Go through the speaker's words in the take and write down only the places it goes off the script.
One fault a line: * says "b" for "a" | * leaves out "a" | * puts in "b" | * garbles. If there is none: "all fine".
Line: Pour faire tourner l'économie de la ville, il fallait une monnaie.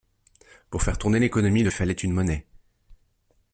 * leaves out "la ville il"